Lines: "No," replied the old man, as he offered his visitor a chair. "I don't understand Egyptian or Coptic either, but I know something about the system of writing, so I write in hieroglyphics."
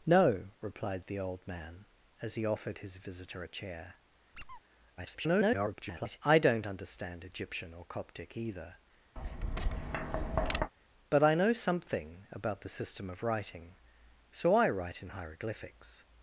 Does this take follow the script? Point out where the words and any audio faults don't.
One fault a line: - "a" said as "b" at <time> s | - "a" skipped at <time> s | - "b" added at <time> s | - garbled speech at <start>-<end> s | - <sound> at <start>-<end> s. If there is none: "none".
- squeak at 4.3-4.6 s
- garbled speech at 5.0-6.2 s
- tap at 9.2-10.7 s